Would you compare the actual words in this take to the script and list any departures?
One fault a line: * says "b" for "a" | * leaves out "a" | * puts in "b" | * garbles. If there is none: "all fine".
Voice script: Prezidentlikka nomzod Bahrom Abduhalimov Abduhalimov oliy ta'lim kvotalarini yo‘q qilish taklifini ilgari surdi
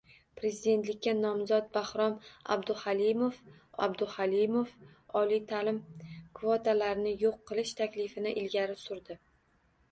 all fine